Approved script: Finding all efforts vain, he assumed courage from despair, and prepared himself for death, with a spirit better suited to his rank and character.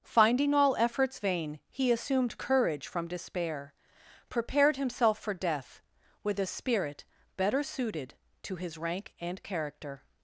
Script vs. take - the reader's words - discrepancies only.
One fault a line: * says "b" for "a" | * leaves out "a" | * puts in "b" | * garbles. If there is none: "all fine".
* leaves out "and"